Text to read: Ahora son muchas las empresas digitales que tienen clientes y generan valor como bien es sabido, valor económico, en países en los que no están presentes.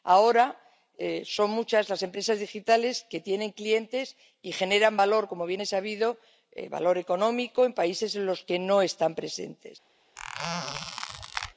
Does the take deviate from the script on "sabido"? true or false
false